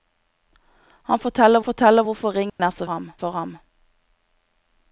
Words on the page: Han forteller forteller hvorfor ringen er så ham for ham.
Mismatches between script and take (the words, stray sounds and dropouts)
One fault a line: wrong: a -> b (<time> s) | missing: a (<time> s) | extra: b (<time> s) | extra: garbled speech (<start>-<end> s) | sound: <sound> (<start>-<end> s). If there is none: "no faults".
sound: dropout (2.5-2.6 s)